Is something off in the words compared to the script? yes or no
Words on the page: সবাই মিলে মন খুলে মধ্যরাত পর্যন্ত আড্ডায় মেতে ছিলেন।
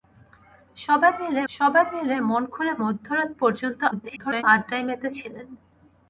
yes